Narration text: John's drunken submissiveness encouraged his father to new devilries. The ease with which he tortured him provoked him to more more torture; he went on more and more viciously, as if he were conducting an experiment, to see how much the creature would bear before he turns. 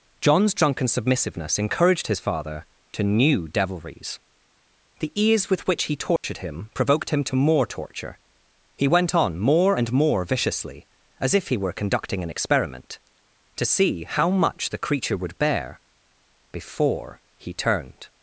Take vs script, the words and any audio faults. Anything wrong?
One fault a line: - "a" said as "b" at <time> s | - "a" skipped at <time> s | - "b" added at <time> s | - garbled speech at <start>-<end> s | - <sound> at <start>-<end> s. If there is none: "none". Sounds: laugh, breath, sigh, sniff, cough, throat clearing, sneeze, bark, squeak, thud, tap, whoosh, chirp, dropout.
- dropout at 6.2-6.2 s
- "more" skipped at 7.7 s
- "turns" said as "turned" at 17.5 s